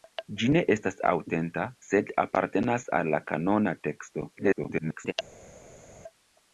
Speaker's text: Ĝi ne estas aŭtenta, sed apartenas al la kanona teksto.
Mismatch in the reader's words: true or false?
true